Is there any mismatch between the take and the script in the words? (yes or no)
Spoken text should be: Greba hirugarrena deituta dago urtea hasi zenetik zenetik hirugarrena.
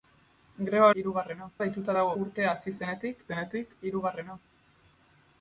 no